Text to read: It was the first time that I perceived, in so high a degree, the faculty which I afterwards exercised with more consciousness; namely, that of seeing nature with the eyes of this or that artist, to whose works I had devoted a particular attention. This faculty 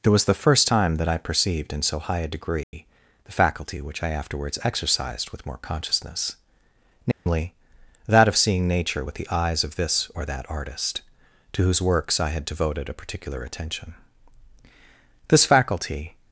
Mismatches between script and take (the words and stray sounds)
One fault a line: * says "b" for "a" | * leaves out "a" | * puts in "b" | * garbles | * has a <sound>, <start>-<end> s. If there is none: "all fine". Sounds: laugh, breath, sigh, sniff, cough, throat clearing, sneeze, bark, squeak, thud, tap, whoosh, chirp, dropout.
* has a dropout, 2.6-2.7 s
* has a dropout, 7.1-7.3 s